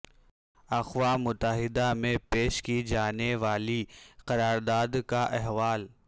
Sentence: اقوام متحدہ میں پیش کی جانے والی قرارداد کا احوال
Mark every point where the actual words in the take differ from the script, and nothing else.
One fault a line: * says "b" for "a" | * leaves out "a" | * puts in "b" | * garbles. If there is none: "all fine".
all fine